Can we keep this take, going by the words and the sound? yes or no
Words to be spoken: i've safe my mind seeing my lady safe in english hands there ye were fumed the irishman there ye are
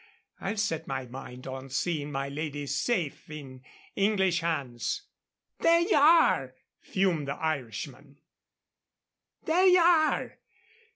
no